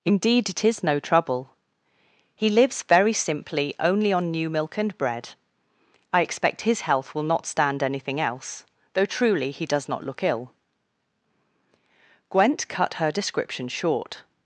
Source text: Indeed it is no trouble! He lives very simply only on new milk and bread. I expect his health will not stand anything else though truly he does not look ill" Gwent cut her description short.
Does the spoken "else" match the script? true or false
true